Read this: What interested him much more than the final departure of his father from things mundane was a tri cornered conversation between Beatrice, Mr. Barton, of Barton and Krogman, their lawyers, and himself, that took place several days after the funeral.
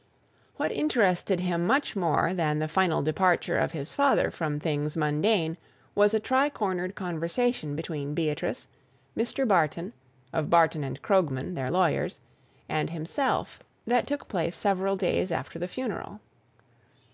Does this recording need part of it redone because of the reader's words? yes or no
no